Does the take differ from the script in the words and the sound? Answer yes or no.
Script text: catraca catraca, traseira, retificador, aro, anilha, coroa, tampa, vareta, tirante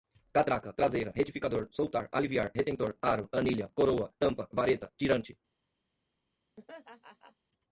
yes